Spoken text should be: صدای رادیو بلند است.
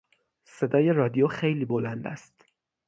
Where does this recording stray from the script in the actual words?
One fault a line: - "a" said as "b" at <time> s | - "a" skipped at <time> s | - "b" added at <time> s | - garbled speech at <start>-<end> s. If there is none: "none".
- "خیلی" added at 1.2 s